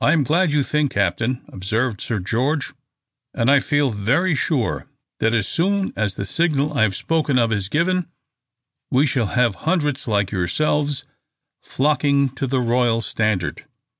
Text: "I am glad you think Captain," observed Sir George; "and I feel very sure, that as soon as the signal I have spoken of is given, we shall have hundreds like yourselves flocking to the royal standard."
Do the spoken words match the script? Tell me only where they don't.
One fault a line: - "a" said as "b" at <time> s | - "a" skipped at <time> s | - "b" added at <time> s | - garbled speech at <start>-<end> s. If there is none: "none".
none